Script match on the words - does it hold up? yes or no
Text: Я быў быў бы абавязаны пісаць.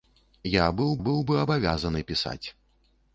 yes